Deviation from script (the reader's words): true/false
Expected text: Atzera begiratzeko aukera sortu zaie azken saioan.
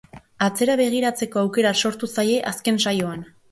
false